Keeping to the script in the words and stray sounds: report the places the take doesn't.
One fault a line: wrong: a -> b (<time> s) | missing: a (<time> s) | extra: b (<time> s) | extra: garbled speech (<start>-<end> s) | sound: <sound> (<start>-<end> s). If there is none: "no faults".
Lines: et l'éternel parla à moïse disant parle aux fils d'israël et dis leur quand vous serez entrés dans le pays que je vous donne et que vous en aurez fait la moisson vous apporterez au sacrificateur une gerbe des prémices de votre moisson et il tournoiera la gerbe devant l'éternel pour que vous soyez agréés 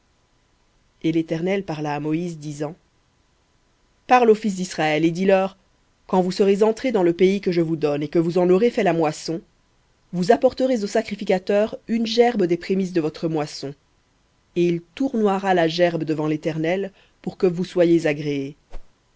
sound: whoosh (18.7-18.9 s)